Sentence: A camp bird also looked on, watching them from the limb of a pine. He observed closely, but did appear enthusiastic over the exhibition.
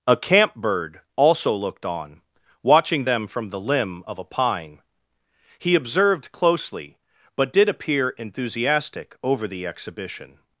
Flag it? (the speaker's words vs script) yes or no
no